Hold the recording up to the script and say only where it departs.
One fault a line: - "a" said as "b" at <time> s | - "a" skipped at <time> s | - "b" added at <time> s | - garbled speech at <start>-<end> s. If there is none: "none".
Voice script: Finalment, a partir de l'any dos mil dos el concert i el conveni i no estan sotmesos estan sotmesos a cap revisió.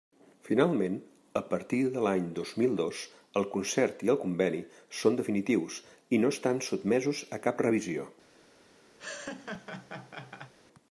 - "són definitius" added at 5.0 s
- "estan sotmesos" skipped at 7.2 s